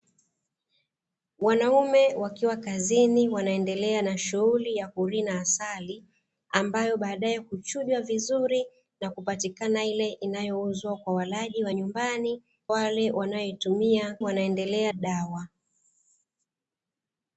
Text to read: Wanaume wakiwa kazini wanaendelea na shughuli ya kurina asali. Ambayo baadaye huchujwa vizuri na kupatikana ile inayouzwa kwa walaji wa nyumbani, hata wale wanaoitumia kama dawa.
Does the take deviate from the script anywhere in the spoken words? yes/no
yes